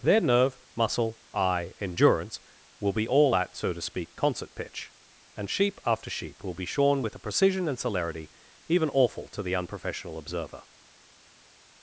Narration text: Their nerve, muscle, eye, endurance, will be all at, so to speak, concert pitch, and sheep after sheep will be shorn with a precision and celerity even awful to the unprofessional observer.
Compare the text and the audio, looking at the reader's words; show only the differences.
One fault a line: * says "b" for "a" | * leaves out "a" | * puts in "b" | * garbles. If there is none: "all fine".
all fine